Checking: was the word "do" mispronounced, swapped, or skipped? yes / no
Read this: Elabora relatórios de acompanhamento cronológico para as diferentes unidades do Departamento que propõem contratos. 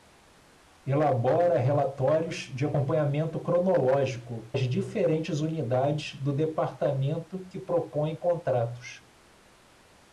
no